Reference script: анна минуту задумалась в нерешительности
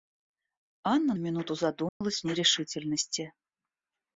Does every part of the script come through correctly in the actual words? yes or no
yes